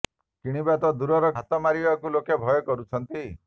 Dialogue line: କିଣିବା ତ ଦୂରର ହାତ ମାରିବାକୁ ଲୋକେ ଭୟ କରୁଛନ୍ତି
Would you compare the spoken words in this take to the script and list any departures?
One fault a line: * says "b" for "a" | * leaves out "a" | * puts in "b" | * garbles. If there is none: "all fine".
all fine